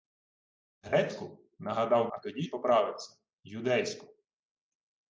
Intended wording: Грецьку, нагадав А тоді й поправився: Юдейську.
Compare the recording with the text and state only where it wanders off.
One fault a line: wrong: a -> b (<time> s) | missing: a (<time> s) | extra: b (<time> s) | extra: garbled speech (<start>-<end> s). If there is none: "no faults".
no faults